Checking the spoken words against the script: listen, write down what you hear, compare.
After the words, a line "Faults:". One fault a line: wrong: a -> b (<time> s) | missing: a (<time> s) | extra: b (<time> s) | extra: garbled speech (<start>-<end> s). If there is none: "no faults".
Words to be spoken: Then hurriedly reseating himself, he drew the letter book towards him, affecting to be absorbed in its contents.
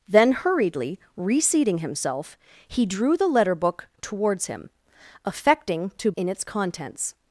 Then hurriedly reseating himself, he drew the letter book towards him, affecting to in its contents.
Faults:
missing: be absorbed (6.1 s)